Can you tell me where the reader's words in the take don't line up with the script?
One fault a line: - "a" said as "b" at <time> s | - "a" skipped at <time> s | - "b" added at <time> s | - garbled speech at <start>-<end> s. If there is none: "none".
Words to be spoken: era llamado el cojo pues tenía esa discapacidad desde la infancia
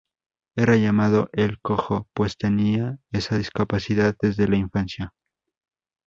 none